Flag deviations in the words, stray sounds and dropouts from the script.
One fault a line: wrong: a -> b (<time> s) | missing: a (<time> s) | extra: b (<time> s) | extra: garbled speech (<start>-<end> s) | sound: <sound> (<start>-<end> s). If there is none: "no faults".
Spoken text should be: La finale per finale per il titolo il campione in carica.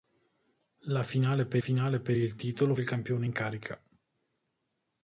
no faults